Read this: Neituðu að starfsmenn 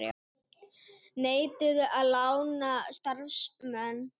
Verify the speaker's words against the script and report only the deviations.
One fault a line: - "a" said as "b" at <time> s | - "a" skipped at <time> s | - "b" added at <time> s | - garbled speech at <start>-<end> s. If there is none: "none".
- "lána" added at 2.1 s